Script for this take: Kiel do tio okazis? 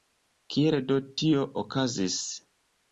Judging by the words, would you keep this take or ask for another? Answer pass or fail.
pass